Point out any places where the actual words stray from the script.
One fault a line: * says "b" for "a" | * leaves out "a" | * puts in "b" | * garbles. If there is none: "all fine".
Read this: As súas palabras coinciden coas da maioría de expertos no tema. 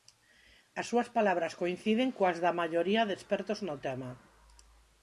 all fine